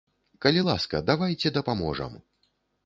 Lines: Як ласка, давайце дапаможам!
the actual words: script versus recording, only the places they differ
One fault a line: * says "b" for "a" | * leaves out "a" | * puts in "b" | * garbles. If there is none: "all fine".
* says "Калі" for "Як"